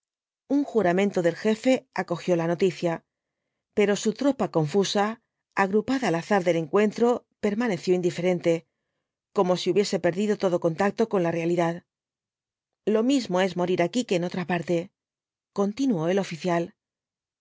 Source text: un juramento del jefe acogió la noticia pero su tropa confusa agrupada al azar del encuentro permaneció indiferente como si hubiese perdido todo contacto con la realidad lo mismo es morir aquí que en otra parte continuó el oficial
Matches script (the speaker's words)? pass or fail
pass